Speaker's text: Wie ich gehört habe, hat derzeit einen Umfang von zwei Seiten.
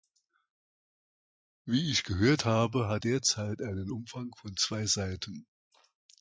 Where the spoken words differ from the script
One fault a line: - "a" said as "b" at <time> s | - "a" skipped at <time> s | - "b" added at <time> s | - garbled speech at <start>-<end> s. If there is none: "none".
none